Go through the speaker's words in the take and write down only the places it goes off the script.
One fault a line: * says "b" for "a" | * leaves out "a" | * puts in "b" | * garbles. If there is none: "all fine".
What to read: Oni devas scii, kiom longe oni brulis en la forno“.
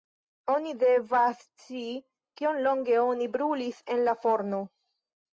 all fine